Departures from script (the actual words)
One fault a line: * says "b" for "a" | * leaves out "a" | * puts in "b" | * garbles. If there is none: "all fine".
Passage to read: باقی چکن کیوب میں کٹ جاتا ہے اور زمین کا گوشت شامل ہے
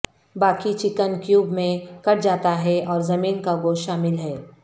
all fine